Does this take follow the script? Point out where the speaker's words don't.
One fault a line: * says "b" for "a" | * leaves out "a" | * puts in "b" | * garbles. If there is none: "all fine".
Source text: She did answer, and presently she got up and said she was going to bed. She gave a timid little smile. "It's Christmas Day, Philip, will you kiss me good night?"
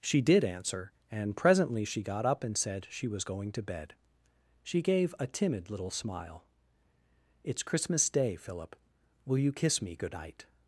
all fine